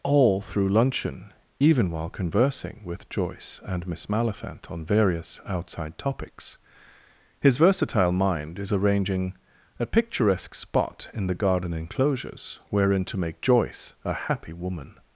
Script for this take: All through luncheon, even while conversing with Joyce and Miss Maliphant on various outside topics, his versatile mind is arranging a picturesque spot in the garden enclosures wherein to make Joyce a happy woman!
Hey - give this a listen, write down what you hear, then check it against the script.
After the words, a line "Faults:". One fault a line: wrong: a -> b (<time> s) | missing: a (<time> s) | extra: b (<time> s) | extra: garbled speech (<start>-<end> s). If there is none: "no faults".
All through luncheon, even while conversing with Joyce and Miss Maliphant on various outside topics, his versatile mind is arranging a picturesque spot in the garden enclosures wherein to make Joyce a happy woman!
Faults:
no faults